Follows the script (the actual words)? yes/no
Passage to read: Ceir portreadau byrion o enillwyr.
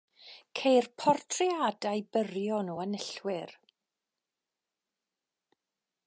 yes